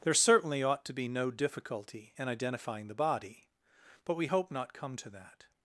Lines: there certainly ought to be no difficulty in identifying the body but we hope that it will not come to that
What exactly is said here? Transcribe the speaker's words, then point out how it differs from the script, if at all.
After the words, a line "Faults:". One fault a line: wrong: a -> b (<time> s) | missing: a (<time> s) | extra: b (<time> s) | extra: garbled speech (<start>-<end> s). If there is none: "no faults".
there certainly ought to be no difficulty in identifying the body but we hope not come to that
Faults:
missing: that it will (4.5 s)